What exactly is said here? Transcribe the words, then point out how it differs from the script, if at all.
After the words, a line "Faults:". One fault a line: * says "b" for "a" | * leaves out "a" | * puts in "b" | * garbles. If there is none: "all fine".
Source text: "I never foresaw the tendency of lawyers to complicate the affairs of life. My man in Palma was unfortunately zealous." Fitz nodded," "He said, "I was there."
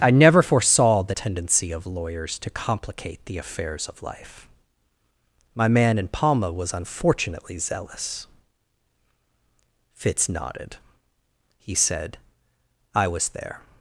"I never foresaw the tendency of lawyers to complicate the affairs of life. My man in Palma was unfortunately zealous." Fitz nodded," "He said, "I was there."
Faults:
all fine